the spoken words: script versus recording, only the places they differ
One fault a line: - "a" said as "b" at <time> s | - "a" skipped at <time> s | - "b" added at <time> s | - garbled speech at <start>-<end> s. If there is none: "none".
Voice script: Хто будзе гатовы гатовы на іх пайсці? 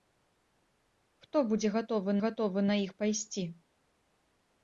none